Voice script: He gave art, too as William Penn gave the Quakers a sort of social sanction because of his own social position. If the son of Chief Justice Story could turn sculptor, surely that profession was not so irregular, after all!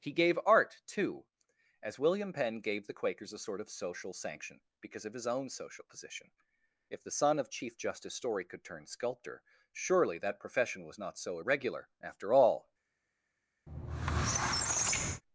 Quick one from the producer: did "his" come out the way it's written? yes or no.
yes